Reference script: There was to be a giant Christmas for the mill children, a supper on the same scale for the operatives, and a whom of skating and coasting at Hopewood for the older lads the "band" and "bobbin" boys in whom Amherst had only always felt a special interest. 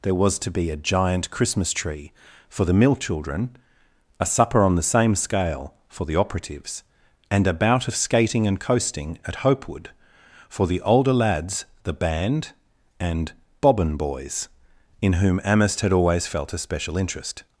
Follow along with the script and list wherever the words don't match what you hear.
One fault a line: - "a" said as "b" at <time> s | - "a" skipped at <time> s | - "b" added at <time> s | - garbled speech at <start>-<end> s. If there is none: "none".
- "tree" added at 1.7 s
- "whom" said as "bout" at 7.5 s
- "only" skipped at 15.9 s